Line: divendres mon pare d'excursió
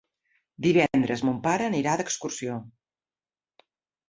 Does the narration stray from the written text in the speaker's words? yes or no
yes